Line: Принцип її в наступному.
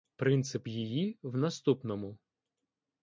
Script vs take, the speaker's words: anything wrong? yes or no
no